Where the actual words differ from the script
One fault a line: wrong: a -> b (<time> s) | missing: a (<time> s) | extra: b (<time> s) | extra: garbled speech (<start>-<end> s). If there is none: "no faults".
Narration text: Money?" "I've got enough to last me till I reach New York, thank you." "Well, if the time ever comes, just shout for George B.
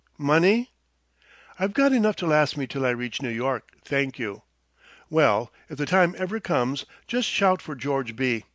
no faults